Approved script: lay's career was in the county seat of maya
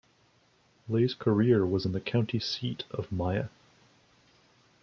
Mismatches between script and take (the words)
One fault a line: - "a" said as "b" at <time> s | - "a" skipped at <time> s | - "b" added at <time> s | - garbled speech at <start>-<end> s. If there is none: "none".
none